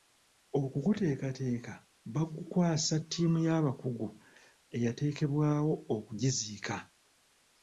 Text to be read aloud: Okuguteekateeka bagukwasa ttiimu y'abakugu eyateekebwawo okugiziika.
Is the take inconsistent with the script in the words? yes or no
no